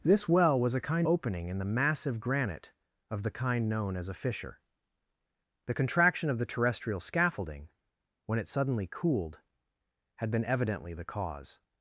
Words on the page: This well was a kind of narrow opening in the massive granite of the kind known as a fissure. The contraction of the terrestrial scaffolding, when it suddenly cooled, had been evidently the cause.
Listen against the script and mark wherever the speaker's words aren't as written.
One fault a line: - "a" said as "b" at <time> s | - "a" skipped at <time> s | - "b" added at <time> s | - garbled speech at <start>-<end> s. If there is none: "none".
- "of narrow" skipped at 1.1 s